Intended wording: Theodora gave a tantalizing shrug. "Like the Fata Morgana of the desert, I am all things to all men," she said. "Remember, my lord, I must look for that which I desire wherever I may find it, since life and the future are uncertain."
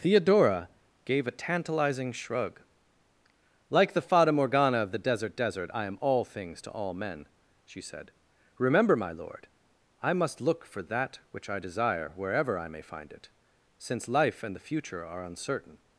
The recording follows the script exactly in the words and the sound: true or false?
false